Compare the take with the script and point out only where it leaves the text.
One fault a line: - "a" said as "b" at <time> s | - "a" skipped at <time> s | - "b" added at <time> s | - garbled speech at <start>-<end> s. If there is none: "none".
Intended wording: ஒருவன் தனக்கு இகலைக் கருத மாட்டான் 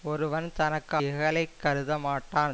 none